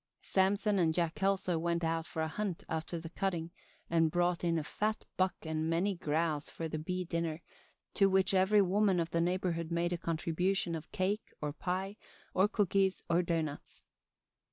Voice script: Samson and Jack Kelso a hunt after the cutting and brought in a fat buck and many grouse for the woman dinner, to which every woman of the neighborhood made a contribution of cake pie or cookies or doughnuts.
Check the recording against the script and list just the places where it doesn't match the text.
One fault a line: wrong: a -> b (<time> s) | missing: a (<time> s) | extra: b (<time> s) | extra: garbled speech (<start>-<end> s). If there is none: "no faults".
extra: went out for (1.6 s)
wrong: woman -> bee (6.8 s)
extra: or (11.4 s)